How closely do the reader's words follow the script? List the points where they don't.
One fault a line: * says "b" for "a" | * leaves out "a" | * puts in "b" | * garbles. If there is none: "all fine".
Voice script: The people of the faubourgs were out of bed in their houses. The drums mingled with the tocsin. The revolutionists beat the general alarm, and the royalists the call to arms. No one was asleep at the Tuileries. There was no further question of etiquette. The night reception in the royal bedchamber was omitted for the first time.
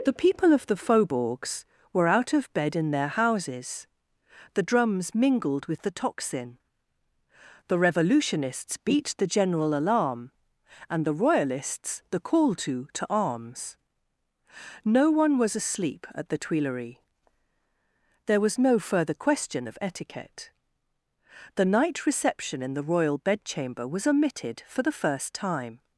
* puts in "to"